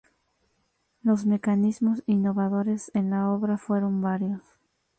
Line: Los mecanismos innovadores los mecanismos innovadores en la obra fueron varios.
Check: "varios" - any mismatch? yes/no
no